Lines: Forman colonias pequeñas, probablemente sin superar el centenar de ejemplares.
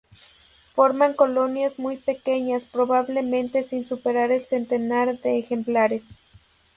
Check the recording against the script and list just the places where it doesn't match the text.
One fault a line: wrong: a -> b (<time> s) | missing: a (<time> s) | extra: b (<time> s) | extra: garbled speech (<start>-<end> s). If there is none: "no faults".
extra: muy (1.8 s)